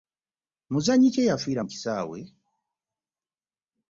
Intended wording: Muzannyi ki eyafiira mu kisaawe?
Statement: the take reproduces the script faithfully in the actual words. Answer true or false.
true